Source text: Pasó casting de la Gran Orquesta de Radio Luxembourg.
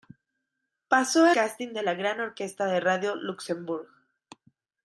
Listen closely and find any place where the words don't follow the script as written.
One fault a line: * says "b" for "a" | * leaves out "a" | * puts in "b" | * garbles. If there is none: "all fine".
all fine